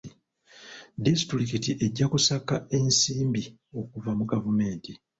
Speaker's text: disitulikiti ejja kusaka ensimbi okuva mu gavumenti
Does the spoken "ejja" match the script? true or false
true